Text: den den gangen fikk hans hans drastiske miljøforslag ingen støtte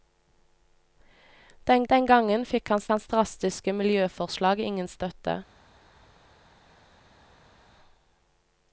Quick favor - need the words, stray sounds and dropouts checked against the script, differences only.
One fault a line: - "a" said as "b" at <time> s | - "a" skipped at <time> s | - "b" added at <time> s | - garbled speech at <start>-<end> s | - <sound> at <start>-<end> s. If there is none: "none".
none